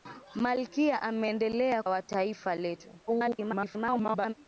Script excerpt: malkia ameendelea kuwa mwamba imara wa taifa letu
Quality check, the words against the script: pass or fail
fail